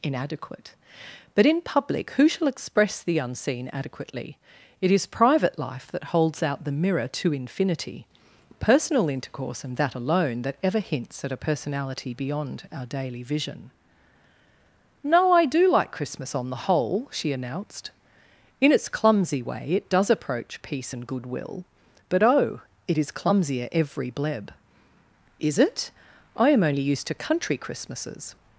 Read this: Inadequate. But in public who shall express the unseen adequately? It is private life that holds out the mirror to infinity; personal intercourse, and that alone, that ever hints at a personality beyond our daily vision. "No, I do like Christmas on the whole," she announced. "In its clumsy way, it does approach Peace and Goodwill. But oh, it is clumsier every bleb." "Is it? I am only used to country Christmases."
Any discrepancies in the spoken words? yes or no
no